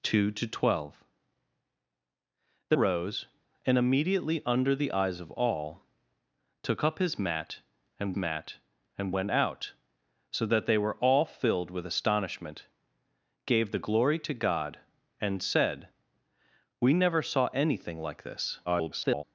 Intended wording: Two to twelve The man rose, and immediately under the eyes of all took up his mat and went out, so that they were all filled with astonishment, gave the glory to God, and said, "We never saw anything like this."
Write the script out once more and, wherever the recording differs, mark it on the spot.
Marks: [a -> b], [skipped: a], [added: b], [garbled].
Two to twelve The [skipped: man] rose, and immediately under the eyes of all took up his mat and [added: mat and] went out, so that they were all filled with astonishment, gave the glory to God, and said, "We never saw anything like this." [garbled]